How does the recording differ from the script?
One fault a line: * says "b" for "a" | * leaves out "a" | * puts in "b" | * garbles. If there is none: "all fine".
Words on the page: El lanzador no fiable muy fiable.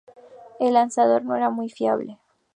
* says "era" for "fiable"